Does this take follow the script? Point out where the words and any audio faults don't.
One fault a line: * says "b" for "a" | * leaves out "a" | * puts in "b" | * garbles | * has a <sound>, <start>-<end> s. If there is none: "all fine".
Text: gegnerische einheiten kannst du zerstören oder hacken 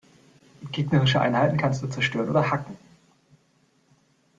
all fine